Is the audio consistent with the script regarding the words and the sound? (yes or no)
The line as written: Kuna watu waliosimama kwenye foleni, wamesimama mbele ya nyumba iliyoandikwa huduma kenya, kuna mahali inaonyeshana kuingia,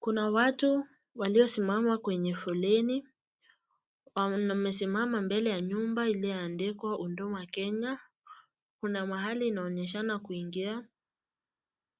yes